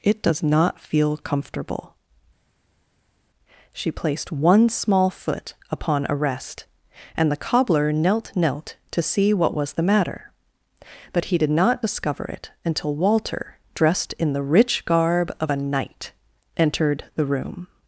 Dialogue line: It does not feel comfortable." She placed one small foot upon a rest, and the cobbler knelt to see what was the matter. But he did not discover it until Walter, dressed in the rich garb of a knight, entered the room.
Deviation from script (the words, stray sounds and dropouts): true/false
true